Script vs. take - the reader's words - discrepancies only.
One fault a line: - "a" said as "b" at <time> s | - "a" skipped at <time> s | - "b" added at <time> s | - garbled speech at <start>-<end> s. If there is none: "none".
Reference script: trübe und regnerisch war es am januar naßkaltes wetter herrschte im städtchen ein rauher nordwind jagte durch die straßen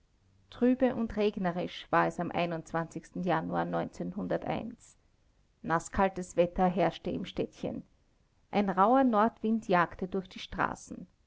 none